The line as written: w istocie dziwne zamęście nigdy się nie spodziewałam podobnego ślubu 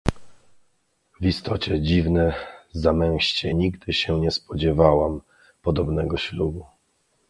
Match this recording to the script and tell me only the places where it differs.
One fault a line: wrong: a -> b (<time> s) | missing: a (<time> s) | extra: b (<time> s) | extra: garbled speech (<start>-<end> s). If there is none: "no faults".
no faults